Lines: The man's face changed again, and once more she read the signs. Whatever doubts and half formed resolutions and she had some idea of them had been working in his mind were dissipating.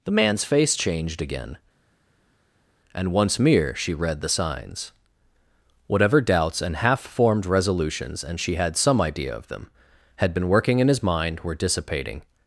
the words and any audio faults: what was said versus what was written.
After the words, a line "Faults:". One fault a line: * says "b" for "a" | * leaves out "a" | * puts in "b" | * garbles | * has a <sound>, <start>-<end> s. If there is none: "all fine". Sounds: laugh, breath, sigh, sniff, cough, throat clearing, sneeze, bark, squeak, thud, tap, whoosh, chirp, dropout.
The man's face changed again, and once mere she read the signs. Whatever doubts and half formed resolutions and she had some idea of them had been working in his mind were dissipating.
Faults:
* says "mere" for "more"